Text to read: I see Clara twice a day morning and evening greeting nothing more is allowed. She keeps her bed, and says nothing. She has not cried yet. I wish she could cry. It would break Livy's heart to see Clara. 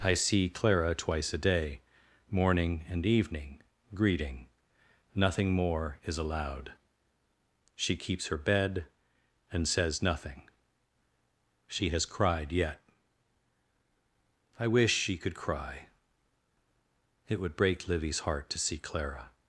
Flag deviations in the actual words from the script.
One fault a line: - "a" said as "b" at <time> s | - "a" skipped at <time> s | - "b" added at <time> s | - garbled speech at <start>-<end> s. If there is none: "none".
- "not" skipped at 12.1 s